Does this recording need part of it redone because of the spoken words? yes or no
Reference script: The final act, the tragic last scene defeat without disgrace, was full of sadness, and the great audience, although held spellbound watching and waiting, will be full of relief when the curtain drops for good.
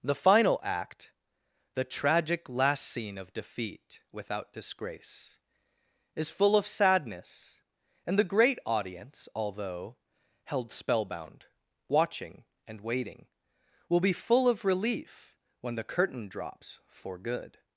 yes